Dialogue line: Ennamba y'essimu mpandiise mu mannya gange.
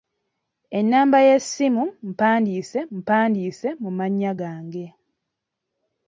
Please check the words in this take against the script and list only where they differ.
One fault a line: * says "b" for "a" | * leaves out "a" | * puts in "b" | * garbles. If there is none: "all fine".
* puts in "mpandiise"